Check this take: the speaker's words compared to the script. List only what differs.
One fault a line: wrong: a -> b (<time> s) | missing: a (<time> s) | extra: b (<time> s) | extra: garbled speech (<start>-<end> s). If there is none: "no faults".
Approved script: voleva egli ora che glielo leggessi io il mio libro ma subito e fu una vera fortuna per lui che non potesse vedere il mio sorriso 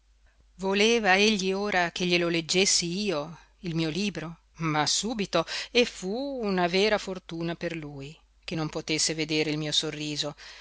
no faults